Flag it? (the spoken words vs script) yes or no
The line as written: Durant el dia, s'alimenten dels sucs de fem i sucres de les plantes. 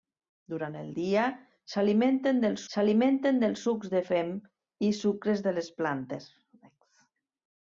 yes